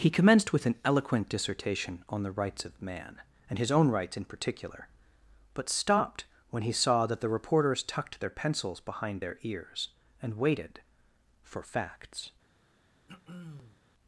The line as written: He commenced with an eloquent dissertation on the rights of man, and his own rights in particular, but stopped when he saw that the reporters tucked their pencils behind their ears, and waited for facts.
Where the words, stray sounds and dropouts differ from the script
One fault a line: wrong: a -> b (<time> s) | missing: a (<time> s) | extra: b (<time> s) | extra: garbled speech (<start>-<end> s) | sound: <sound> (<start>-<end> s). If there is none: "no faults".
sound: throat clearing (13.1-13.8 s)